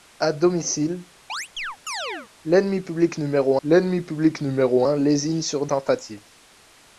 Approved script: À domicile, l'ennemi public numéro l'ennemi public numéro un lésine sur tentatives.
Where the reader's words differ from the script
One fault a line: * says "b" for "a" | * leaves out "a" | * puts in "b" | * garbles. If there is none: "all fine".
all fine